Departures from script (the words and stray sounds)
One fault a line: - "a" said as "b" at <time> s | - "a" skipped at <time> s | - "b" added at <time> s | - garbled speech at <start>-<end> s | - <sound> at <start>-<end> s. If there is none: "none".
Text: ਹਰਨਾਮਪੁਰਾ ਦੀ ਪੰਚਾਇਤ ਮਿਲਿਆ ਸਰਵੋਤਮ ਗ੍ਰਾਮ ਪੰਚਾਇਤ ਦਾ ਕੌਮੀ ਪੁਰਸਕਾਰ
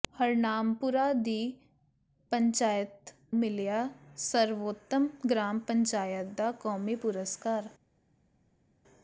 none